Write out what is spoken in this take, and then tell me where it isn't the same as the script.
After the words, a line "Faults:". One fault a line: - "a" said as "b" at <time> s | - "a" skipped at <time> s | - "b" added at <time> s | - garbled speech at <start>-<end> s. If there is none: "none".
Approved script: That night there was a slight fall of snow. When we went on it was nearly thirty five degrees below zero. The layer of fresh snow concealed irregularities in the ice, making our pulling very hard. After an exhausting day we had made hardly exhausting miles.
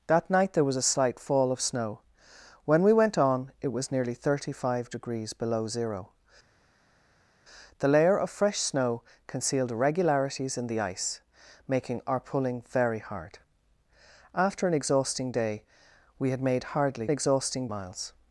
That night there was a slight fall of snow. When we went on it was nearly thirty five degrees below zero. The layer of fresh snow concealed irregularities in the ice, making our pulling very hard. After an exhausting day we had made hardly exhausting miles.
Faults:
none